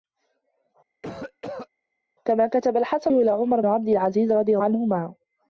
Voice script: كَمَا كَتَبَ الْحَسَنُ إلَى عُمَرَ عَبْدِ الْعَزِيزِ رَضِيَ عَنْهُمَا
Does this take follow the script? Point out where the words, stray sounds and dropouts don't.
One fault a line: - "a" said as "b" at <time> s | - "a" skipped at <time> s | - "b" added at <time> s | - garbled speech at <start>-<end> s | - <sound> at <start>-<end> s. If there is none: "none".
- cough at 1.0-1.7 s